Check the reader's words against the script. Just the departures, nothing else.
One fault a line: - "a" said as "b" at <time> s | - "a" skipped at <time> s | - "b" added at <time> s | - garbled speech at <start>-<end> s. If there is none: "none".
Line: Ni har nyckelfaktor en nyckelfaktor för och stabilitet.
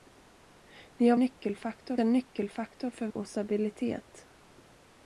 none